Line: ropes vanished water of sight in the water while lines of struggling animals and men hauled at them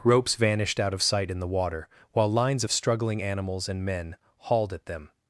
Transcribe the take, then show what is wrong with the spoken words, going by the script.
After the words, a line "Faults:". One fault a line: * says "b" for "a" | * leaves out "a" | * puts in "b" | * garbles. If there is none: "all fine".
ropes vanished out of sight in the water while lines of struggling animals and men hauled at them
Faults:
* says "out" for "water"